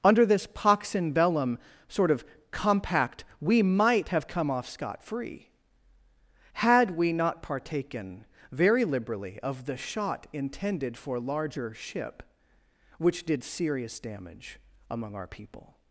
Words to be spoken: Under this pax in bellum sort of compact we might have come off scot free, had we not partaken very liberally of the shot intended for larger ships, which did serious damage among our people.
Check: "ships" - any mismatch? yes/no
yes